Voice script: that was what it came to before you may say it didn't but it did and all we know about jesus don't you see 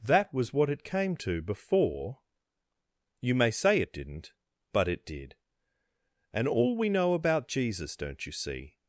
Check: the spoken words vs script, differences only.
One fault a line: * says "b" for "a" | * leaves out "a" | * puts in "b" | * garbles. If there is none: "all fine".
all fine